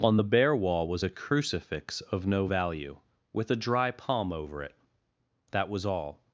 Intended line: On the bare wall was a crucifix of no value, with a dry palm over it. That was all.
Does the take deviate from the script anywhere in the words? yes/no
no